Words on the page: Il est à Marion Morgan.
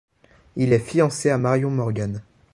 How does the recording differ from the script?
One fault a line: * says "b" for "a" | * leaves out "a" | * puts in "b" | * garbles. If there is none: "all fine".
* puts in "fiancé"